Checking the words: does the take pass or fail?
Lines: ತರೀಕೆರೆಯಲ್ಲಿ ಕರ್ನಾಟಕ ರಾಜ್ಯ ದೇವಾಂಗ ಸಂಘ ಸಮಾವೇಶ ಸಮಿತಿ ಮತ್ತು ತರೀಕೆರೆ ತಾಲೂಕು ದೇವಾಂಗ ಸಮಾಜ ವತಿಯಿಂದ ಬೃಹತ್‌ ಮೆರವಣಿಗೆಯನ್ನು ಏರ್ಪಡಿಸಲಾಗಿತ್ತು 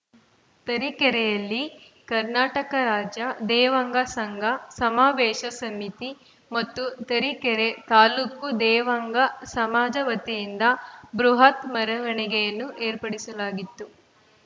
pass